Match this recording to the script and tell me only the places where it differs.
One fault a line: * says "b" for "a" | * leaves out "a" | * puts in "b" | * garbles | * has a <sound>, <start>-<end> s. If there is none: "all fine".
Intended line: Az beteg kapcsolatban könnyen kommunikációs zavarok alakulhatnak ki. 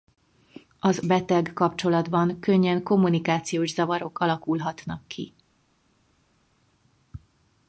all fine